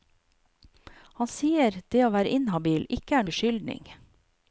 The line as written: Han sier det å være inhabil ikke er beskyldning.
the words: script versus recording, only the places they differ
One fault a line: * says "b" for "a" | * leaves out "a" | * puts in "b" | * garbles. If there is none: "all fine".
all fine